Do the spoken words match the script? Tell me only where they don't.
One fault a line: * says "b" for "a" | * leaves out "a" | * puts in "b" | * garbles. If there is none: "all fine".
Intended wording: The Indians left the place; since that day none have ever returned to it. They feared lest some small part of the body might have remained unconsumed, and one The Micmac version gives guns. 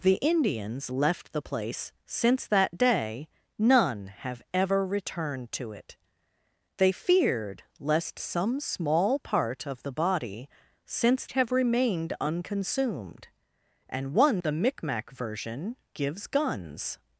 * says "since" for "might"